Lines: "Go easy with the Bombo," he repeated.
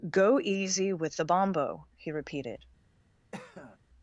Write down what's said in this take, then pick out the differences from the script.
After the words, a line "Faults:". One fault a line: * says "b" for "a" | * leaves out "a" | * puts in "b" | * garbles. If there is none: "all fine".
"Go easy with the Bombo," he repeated.
Faults:
all fine